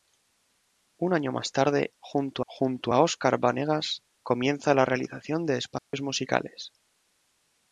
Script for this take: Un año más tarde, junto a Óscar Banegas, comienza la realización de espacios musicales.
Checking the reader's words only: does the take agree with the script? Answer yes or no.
no